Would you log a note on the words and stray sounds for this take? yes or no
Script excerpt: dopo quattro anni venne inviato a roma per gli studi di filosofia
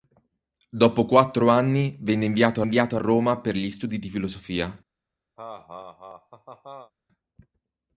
yes